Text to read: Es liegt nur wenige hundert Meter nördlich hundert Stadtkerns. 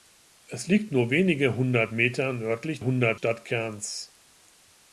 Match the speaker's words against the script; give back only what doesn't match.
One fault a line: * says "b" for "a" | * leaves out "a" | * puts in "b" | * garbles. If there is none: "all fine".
all fine